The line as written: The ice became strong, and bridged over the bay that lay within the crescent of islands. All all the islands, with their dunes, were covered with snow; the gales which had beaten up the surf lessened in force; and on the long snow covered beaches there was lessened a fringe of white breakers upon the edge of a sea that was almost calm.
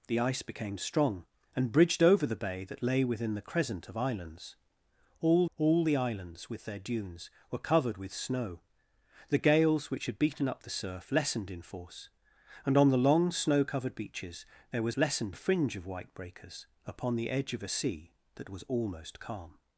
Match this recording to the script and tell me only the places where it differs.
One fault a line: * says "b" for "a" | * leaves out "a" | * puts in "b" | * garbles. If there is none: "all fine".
all fine